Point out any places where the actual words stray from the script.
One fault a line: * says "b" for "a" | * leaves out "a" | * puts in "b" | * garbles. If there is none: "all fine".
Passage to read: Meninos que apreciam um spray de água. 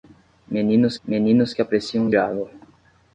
* puts in "meninos"
* leaves out "spray de"